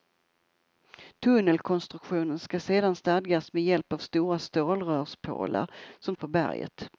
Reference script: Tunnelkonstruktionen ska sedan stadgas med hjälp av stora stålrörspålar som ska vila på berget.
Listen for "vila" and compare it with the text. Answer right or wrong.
wrong